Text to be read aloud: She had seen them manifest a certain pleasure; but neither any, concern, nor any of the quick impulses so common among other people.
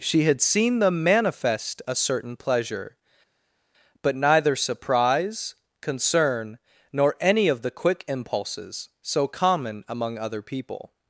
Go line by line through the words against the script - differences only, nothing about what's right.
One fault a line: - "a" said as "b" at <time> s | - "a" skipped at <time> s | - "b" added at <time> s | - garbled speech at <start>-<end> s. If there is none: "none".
- "any" said as "surprise" at 4.5 s